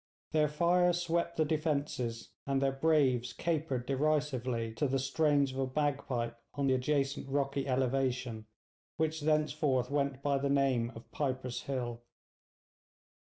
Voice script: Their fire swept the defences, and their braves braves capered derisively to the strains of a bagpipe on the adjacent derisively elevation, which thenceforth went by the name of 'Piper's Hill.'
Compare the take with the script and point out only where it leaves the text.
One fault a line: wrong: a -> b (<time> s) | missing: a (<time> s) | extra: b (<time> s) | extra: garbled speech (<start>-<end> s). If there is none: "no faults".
missing: braves (3.3 s)
wrong: derisively -> rocky (7.3 s)